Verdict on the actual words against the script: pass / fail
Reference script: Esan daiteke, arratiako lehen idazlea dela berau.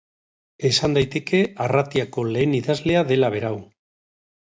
pass